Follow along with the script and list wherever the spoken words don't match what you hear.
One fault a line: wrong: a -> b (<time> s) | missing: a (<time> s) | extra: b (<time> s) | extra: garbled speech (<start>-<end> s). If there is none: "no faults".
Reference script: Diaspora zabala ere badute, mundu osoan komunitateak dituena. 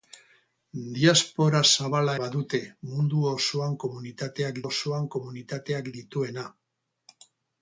missing: ere (2.2 s)
extra: osoan komunitateak (4.6 s)